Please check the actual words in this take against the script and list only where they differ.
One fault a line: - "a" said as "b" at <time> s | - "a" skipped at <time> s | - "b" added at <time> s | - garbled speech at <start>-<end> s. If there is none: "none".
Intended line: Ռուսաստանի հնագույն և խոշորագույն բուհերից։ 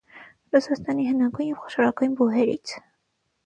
none